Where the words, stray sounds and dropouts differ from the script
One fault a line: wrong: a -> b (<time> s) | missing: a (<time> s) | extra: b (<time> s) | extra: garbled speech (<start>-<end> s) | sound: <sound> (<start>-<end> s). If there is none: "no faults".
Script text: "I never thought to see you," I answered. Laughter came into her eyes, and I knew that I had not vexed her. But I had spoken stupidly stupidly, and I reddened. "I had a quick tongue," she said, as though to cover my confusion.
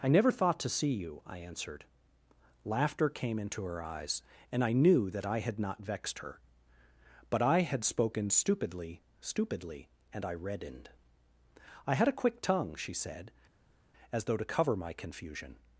no faults